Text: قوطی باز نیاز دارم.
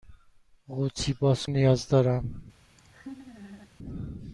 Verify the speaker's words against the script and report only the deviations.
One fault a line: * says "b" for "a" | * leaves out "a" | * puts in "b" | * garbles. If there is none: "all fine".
all fine